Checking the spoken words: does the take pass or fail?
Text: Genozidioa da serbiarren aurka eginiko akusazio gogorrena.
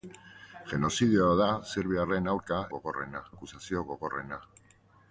fail